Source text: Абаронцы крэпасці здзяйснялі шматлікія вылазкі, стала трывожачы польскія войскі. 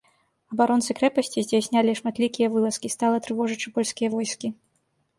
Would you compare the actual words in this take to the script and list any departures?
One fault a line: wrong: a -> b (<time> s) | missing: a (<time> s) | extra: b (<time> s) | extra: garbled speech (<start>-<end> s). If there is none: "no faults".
no faults